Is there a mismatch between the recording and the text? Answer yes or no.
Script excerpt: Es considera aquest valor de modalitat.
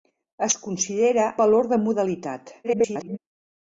yes